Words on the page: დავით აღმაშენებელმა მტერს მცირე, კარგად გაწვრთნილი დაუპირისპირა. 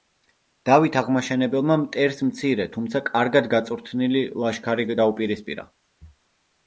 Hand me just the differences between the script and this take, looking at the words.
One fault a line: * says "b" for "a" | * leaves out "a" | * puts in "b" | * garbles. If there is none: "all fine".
* puts in "თუმცა"
* puts in "ლაშქარი"